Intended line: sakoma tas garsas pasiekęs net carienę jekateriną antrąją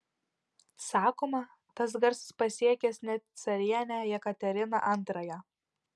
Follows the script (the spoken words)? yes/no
yes